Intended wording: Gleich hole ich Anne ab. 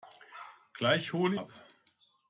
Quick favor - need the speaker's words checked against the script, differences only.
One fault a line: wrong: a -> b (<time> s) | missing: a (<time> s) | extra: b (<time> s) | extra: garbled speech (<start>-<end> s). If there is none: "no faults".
missing: ich Anne (1.4 s)